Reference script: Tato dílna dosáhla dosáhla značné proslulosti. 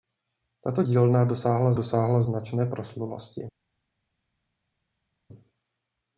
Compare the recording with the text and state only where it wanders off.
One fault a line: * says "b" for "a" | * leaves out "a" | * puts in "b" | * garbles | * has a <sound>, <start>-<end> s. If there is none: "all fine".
all fine